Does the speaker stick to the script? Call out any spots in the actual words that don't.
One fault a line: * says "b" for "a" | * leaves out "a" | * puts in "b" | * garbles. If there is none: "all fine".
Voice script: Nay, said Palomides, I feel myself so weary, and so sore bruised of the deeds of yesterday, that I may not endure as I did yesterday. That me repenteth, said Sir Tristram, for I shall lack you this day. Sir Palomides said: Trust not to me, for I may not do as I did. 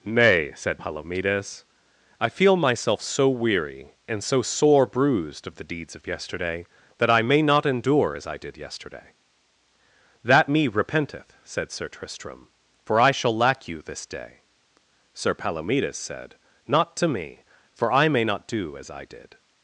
* leaves out "Trust"